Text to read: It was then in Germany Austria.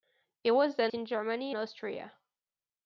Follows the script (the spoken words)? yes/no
yes